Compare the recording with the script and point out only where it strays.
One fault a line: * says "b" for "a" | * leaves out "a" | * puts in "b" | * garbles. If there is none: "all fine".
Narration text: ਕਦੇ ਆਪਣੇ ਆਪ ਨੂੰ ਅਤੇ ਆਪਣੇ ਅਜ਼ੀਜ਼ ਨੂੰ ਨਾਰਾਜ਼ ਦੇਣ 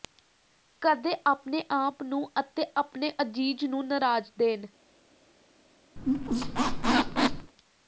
all fine